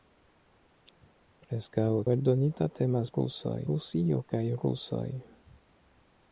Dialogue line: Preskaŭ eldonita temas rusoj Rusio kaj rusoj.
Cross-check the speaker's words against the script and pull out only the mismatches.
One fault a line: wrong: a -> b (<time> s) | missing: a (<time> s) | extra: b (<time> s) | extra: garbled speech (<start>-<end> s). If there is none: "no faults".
no faults